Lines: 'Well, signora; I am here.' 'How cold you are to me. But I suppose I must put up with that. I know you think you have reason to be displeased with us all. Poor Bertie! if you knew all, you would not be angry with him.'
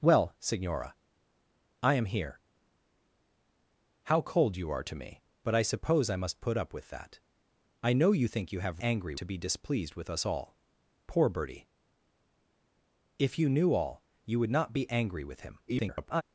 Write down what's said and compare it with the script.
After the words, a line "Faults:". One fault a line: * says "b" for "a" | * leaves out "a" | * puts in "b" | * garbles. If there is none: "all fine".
'Well, signora; I am here.' 'How cold you are to me. But I suppose I must put up with that. I know you think you have angry to be displeased with us all. Poor Bertie! if you knew all, you would not be angry with him.' [garbled]
Faults:
* says "angry" for "reason"
* garbles